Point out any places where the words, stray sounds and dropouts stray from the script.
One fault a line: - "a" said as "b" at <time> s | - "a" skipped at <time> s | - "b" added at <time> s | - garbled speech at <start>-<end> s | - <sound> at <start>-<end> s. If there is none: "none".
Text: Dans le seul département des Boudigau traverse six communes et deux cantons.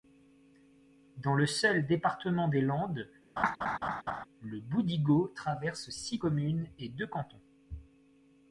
- "Landes le" added at 2.6 s
- laugh at 3.4-4.2 s